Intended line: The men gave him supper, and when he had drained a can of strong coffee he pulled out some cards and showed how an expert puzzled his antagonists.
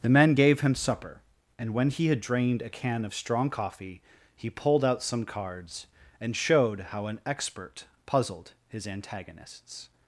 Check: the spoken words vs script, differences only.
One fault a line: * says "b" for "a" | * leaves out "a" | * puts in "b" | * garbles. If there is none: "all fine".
all fine